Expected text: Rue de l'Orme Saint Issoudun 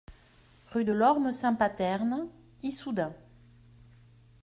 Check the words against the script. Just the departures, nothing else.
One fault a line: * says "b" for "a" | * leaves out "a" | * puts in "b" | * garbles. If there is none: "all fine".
* puts in "Paterne"